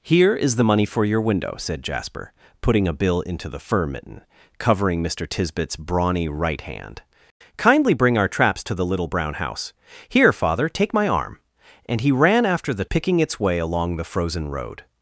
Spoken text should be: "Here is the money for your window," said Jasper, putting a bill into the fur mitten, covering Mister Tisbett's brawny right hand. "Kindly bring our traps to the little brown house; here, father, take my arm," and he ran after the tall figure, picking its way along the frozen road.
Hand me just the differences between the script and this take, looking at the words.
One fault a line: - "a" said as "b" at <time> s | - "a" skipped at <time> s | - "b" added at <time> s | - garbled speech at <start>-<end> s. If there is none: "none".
- "tall figure" skipped at 12.9 s